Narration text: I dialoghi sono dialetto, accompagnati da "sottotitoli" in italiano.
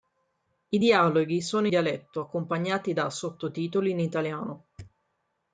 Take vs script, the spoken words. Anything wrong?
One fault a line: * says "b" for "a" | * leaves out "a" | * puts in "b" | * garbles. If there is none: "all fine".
all fine